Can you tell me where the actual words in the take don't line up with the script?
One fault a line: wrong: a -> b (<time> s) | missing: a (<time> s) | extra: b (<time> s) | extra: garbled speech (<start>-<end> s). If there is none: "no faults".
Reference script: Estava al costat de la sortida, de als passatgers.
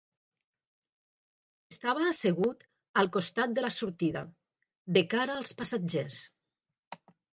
extra: assegut (2.1 s)
extra: cara (5.2 s)